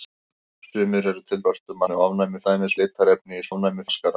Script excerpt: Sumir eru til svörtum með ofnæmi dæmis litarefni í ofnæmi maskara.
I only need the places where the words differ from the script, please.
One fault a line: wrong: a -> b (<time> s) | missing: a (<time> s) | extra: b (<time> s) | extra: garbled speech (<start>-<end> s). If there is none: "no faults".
no faults